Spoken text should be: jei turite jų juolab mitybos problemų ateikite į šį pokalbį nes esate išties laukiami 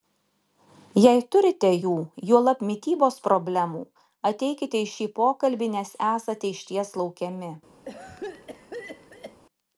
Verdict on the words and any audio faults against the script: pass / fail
fail